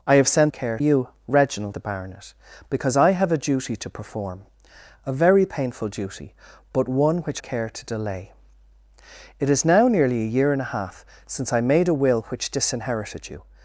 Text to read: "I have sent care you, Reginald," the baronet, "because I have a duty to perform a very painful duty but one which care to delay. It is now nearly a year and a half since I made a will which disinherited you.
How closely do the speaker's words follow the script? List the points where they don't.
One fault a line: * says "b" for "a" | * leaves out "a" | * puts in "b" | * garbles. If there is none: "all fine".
all fine